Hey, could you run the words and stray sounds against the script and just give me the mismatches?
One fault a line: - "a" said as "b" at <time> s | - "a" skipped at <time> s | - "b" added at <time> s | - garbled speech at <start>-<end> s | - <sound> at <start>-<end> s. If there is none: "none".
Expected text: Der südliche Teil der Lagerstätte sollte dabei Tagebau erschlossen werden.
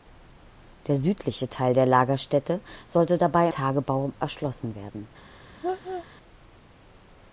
- laugh at 5.6-6.1 s